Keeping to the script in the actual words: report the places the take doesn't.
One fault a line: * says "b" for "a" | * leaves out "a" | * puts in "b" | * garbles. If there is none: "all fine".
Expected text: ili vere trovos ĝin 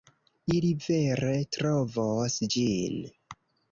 all fine